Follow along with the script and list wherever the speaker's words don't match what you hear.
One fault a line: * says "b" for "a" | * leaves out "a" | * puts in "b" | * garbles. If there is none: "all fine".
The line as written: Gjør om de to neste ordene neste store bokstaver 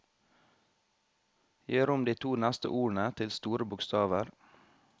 * says "til" for "neste"